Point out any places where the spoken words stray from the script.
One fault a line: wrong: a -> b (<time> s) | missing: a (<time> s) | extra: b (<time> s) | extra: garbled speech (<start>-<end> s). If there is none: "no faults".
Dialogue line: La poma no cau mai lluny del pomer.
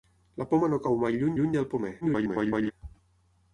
extra: lluny (1.4 s)
extra: garbled speech (2.0-2.7 s)